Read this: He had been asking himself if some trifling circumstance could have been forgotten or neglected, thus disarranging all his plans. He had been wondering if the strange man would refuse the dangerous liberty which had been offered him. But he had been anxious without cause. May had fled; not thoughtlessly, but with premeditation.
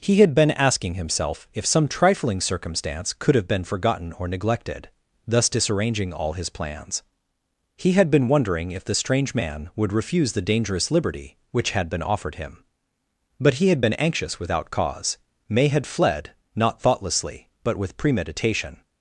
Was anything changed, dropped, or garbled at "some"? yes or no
no